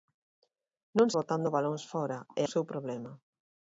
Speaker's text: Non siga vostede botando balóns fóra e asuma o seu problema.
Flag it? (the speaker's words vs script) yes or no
yes